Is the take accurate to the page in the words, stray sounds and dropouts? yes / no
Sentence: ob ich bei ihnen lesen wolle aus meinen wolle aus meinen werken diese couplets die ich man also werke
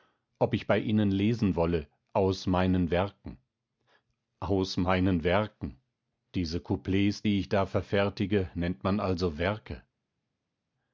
no